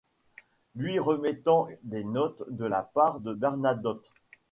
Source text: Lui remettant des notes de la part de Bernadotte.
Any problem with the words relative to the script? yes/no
no